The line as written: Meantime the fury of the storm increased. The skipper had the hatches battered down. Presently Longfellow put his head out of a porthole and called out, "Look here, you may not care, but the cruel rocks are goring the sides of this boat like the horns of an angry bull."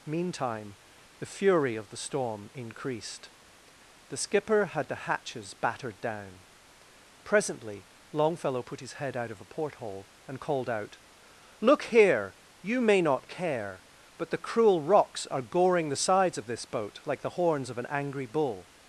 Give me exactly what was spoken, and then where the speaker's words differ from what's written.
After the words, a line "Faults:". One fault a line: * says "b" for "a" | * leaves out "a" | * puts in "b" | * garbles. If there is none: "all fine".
Meantime the fury of the storm increased. The skipper had the hatches battered down. Presently Longfellow put his head out of a porthole and called out, "Look here, you may not care, but the cruel rocks are goring the sides of this boat like the horns of an angry bull."
Faults:
all fine